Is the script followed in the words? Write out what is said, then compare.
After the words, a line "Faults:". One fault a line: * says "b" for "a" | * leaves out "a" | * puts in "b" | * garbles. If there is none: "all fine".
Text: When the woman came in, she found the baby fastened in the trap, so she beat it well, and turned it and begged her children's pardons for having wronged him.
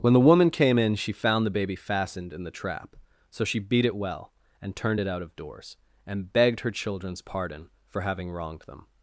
When the woman came in, she found the baby fastened in the trap, so she beat it well, and turned it out of doors, and begged her children's pardon for having wronged them.
Faults:
* puts in "out of doors"
* says "pardon" for "pardons"
* says "them" for "him"